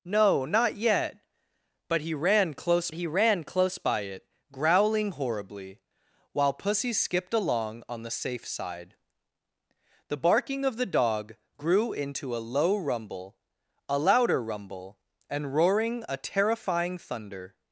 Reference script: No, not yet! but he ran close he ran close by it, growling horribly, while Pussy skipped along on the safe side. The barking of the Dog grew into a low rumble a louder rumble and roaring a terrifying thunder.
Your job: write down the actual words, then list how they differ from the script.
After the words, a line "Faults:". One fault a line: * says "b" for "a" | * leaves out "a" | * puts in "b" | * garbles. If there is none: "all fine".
No, not yet! but he ran close he ran close by it, growling horribly, while Pussy skipped along on the safe side. The barking of the Dog grew into a low rumble a louder rumble and roaring a terrifying thunder.
Faults:
all fine